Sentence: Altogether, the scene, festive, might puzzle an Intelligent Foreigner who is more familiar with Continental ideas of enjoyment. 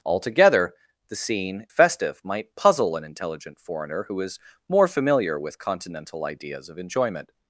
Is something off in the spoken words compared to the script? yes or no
no